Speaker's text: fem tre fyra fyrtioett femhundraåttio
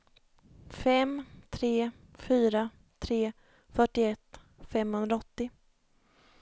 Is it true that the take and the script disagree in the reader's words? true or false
true